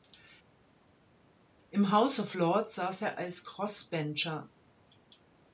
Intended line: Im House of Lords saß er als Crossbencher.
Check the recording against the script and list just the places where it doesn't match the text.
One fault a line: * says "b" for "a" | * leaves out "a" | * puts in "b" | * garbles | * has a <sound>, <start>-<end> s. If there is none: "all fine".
all fine